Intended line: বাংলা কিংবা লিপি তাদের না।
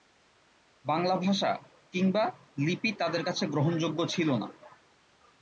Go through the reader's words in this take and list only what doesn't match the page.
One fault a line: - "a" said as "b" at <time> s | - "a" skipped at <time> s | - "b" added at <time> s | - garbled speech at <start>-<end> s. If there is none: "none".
- "ভাষা" added at 1.1 s
- "কাছে গ্রহণযোগ্য ছিল" added at 3.2 s